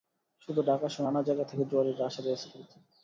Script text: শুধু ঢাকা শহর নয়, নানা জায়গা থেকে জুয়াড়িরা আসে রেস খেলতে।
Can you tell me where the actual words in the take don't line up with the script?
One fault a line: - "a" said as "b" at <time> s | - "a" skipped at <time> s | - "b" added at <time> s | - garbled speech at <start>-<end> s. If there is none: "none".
- "নয়" skipped at 1.1 s